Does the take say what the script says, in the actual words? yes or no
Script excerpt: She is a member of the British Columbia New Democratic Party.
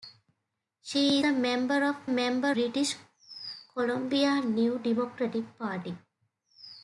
no